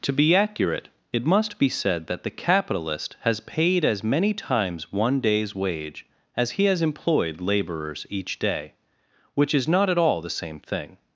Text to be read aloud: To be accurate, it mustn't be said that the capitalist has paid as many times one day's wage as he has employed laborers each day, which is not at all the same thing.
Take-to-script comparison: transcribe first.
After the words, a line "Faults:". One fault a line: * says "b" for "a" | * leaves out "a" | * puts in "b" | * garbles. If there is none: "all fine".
To be accurate, it must be said that the capitalist has paid as many times one day's wage as he has employed laborers each day, which is not at all the same thing.
Faults:
* says "must" for "mustn't"